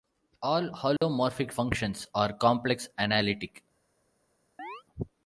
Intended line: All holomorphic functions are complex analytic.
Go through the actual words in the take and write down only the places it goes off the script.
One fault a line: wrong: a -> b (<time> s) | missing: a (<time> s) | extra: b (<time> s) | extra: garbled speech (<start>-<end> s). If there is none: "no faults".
no faults